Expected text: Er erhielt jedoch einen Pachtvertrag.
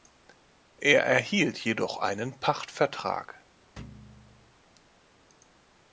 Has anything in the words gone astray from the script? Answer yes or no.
no